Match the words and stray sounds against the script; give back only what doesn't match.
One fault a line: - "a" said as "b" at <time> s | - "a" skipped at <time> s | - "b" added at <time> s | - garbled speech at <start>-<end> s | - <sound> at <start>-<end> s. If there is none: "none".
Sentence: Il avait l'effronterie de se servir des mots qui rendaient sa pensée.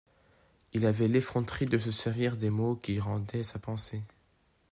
none